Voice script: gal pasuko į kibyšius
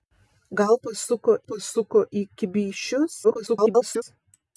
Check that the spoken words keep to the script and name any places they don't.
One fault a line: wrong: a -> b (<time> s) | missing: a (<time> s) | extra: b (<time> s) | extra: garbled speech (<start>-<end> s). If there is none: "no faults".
extra: pasuko (1.5 s)
extra: garbled speech (3.2-4.0 s)